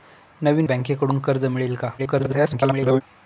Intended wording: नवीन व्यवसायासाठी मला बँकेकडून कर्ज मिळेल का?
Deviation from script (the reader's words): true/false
true